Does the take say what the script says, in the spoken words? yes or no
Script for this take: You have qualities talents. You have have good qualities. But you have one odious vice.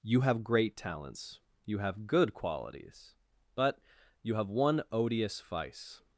no